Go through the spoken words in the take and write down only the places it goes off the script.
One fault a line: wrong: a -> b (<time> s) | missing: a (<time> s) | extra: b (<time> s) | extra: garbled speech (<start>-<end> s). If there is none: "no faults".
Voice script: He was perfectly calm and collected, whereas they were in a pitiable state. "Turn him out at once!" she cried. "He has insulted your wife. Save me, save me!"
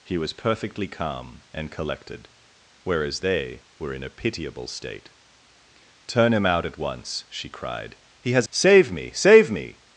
missing: insulted your wife (8.5 s)